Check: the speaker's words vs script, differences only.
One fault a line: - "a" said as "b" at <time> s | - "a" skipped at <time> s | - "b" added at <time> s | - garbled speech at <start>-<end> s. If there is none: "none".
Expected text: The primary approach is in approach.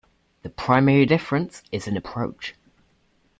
- "approach" said as "difference" at 1.0 s